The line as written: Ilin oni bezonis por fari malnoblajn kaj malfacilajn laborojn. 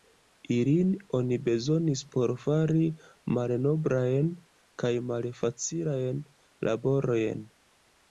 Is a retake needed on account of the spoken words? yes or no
no